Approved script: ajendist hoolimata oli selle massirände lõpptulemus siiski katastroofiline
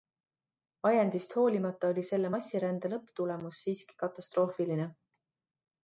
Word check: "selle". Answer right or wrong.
right